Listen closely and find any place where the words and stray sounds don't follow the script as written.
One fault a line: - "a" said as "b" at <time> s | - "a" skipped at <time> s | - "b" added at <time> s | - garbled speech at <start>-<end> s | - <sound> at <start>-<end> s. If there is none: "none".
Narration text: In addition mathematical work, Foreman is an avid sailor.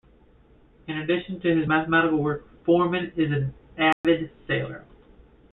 - "to his" added at 1.4 s
- dropout at 3.9-4.0 s